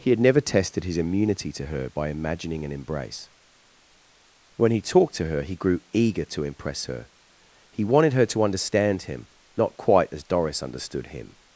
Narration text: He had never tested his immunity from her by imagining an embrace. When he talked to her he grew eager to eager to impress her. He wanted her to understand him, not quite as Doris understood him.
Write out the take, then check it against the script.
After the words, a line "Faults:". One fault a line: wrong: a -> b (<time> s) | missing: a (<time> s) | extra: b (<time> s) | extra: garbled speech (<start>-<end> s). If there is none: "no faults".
He had never tested his immunity to her by imagining an embrace. When he talked to her he grew eager to impress her. He wanted her to understand him, not quite as Doris understood him.
Faults:
wrong: from -> to (1.5 s)
missing: eager to (6.4 s)